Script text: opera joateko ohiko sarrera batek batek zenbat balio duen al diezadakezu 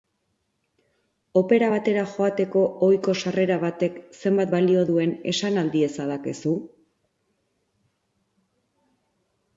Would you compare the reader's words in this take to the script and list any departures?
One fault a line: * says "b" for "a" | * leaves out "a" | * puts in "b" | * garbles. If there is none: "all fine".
* puts in "batera"
* leaves out "batek"
* puts in "esan"